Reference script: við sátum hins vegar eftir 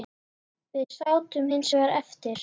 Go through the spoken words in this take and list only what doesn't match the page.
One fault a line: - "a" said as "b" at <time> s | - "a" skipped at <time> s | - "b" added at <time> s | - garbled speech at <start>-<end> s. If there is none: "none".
none